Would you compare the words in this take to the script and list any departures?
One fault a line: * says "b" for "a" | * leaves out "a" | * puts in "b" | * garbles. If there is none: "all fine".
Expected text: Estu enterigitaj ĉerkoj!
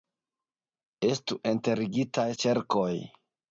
all fine